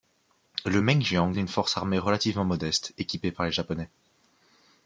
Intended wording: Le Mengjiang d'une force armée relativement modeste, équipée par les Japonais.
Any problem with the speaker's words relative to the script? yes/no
no